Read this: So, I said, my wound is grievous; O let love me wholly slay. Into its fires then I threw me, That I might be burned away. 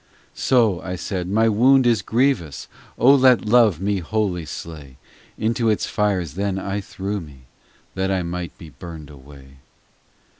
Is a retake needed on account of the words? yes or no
no